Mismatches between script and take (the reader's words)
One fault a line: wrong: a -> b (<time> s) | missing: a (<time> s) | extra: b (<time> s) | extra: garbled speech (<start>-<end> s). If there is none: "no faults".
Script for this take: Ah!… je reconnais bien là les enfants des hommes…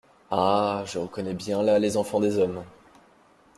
no faults